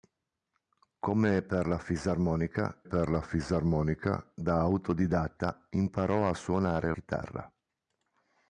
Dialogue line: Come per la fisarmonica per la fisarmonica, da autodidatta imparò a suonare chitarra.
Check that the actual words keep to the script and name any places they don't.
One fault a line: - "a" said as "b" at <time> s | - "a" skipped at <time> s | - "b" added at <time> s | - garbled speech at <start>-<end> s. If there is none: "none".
none